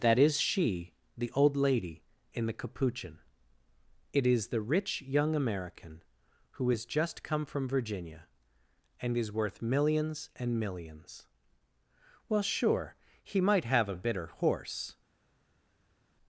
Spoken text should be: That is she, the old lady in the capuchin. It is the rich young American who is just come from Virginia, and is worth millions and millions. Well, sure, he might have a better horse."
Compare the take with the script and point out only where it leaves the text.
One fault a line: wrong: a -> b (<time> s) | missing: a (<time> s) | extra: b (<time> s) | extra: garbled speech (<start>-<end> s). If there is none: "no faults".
wrong: better -> bitter (14.0 s)